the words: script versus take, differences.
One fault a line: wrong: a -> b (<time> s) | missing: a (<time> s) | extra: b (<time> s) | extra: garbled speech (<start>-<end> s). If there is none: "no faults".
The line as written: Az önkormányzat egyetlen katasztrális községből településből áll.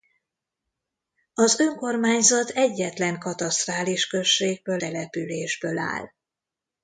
no faults